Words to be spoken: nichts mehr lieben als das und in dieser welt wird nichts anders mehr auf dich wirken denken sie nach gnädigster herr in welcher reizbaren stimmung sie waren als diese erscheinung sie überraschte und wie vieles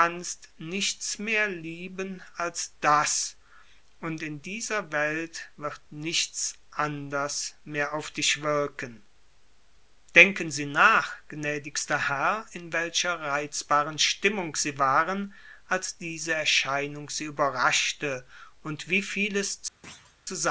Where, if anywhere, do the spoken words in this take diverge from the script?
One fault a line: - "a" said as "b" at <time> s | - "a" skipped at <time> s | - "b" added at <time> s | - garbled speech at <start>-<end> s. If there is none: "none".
none